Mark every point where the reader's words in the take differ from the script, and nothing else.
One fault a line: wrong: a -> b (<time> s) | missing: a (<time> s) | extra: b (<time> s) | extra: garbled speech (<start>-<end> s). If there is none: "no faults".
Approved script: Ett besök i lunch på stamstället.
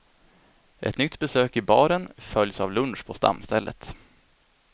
extra: nytt (1.0 s)
extra: baren följs av (1.6 s)